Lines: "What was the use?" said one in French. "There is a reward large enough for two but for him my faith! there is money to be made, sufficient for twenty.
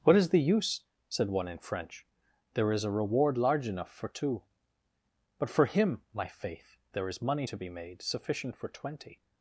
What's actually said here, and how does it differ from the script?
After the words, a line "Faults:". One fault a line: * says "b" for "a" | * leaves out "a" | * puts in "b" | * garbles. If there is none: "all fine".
"What is the use?" said one in French. "There is a reward large enough for two but for him my faith! there is money to be made, sufficient for twenty.
Faults:
* says "is" for "was"